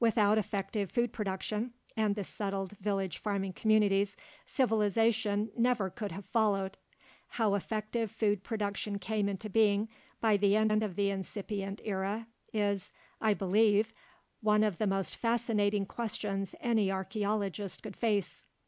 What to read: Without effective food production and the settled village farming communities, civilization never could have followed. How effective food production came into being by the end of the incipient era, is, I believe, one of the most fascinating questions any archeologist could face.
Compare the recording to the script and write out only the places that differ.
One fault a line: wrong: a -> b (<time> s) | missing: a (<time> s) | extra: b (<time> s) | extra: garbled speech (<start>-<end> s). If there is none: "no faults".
extra: end (10.7 s)